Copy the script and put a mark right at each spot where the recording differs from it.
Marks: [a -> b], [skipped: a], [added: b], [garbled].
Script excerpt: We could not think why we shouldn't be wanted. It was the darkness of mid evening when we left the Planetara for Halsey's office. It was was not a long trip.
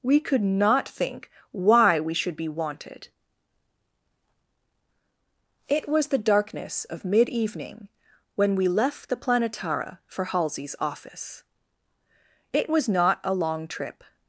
We could not think why we [shouldn't -> should] be wanted. It was the darkness of mid evening when we left the Planetara for Halsey's office. It was [skipped: was] not a long trip.